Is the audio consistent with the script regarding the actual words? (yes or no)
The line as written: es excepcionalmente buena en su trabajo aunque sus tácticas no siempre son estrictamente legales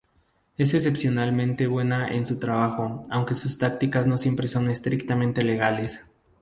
yes